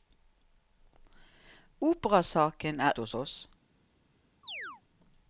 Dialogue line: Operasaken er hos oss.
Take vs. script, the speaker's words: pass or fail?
pass